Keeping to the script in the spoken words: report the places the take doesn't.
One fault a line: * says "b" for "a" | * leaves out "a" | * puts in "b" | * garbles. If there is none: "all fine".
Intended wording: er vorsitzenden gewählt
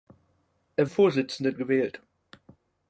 all fine